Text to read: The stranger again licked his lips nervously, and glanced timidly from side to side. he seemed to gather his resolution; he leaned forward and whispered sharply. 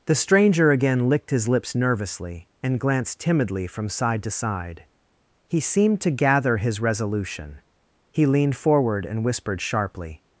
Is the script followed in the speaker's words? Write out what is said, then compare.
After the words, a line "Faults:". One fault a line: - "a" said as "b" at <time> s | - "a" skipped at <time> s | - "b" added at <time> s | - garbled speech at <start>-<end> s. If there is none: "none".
The stranger again licked his lips nervously, and glanced timidly from side to side. he seemed to gather his resolution; he leaned forward and whispered sharply.
Faults:
none